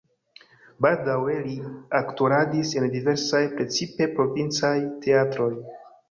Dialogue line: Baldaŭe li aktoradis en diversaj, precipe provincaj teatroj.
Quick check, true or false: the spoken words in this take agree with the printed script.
true